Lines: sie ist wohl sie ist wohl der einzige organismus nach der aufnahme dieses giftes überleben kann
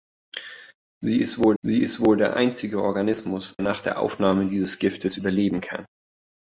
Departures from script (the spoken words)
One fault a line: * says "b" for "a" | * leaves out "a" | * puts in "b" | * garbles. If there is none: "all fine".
all fine